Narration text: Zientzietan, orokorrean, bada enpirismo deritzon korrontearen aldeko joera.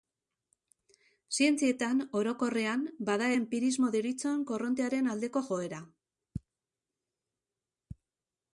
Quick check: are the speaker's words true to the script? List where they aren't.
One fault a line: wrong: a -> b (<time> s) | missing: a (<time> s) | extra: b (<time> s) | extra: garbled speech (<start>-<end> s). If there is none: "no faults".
no faults